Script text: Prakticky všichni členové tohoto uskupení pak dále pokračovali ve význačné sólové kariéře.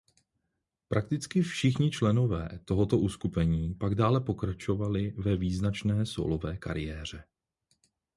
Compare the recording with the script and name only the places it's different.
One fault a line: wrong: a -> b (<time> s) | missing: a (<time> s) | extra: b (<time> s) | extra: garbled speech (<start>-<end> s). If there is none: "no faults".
no faults